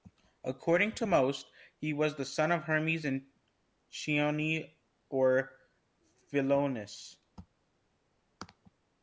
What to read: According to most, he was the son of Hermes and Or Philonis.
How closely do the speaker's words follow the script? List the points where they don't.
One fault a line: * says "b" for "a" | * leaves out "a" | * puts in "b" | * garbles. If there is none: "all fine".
* puts in "Chione"